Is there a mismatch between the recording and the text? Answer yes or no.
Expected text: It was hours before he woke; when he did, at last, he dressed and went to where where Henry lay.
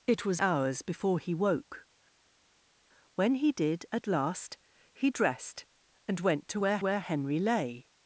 no